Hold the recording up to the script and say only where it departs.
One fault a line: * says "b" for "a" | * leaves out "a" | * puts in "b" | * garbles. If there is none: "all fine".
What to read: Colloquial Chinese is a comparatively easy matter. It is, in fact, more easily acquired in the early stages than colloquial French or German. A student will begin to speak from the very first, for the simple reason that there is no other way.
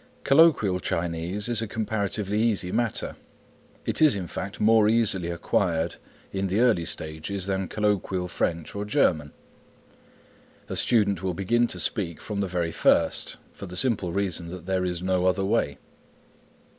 all fine